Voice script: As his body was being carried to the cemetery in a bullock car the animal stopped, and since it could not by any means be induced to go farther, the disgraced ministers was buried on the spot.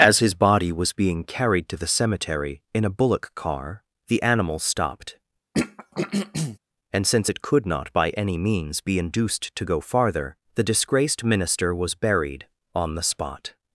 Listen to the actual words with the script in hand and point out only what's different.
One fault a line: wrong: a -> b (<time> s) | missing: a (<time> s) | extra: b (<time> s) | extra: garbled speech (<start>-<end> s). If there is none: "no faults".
wrong: ministers -> minister (11.2 s)